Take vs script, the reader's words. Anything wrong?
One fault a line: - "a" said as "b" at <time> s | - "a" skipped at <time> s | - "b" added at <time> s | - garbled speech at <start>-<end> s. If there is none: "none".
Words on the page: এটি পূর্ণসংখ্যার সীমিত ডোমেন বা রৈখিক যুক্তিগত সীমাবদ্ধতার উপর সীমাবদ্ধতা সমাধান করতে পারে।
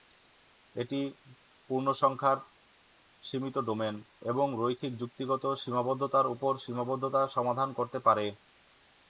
- "বা" said as "এবং" at 4.2 s